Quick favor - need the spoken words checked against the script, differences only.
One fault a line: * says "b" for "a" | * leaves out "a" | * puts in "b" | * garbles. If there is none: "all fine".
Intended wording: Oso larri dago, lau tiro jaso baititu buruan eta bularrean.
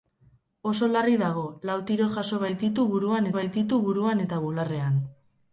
* puts in "baititu buruan"